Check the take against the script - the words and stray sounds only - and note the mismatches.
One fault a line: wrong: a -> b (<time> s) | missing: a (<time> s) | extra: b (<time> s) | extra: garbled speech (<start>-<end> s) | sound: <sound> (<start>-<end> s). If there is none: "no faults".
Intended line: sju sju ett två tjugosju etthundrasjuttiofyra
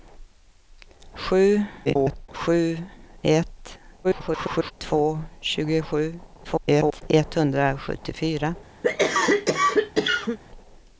extra: garbled speech (1.9-2.3 s)
extra: garbled speech (4.0-4.7 s)
extra: garbled speech (6.4-7.0 s)
sound: cough (8.8-10.4 s)